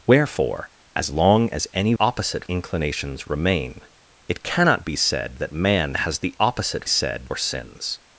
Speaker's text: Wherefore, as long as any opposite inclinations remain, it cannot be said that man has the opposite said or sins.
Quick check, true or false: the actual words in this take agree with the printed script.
true